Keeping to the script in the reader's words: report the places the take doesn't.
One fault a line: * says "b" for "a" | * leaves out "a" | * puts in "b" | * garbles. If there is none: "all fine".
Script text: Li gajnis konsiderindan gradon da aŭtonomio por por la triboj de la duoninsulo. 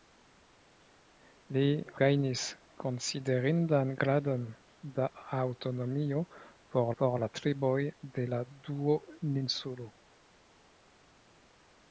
all fine